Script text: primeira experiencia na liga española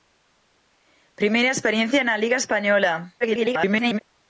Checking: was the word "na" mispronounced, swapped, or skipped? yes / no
no